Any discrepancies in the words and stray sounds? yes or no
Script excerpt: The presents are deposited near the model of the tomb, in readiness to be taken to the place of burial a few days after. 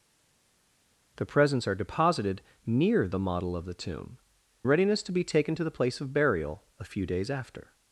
yes